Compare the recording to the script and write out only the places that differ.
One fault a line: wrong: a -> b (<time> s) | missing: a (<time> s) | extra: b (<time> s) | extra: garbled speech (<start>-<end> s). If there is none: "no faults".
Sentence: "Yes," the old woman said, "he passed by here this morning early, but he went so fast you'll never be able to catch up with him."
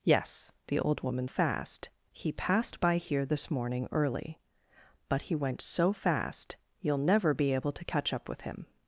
wrong: said -> fast (1.3 s)